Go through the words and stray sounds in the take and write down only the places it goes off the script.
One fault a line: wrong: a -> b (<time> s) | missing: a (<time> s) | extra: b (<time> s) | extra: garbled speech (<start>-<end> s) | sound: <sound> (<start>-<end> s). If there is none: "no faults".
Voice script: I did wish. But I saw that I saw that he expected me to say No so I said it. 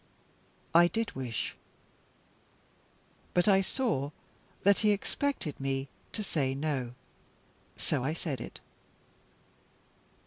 missing: I saw that (4.8 s)